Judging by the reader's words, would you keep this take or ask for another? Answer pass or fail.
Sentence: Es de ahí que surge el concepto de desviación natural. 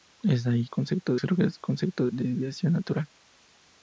fail